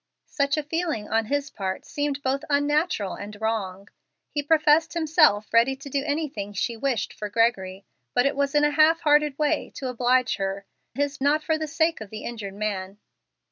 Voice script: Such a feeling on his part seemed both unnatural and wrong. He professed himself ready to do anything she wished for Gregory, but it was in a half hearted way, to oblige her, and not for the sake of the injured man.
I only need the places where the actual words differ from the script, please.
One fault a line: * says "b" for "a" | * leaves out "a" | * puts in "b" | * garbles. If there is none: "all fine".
* says "his" for "and"